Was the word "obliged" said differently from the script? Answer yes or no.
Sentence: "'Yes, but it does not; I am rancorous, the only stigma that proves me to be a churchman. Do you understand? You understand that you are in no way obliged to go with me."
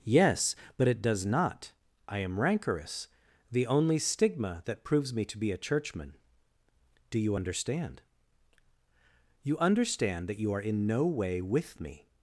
yes